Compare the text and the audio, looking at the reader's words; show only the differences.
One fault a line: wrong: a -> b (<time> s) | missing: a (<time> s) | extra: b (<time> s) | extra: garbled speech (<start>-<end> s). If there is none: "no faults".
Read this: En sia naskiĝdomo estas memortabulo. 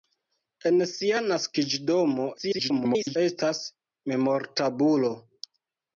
extra: garbled speech (2.4-3.2 s)